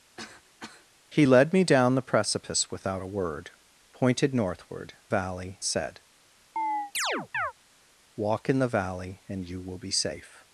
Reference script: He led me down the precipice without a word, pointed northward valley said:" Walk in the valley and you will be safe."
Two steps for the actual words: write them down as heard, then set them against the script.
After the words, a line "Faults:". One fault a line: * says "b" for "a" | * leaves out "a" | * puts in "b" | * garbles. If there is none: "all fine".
He led me down the precipice without a word, pointed northward valley said:" Walk in the valley and you will be safe."
Faults:
all fine